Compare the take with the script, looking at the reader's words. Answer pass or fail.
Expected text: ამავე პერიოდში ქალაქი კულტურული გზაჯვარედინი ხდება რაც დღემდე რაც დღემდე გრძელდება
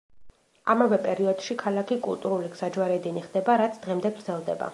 fail